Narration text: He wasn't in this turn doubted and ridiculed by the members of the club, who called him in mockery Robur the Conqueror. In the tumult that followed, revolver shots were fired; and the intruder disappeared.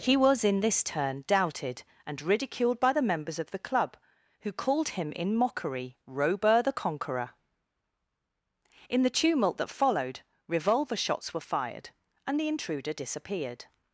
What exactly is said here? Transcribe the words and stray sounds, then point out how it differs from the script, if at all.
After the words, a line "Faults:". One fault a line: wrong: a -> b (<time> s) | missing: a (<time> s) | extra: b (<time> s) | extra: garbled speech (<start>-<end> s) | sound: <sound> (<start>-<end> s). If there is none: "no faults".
He was in this turn doubted and ridiculed by the members of the club, who called him in mockery Robur the Conqueror. In the tumult that followed, revolver shots were fired; and the intruder disappeared.
Faults:
wrong: wasn't -> was (0.2 s)